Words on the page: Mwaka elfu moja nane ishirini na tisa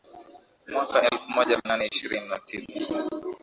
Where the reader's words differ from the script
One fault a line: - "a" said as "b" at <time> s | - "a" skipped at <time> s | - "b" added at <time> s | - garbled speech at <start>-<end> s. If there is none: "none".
none